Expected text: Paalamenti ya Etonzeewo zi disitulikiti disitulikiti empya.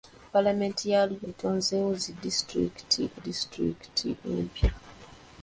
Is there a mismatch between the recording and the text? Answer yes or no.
no